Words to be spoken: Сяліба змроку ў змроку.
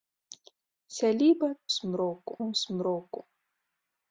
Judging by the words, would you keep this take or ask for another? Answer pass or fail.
pass